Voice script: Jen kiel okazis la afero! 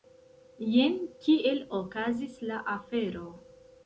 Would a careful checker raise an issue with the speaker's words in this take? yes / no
no